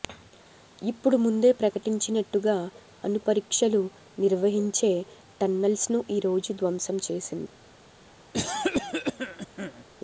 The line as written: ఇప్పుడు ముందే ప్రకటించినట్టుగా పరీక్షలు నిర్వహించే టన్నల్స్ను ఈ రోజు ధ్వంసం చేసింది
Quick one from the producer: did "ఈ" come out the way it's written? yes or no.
yes